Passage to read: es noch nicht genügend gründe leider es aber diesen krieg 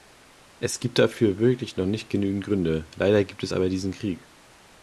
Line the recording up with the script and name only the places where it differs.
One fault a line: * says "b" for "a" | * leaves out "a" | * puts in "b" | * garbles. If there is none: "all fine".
* puts in "gibt dafür wirklich"
* puts in "gibt"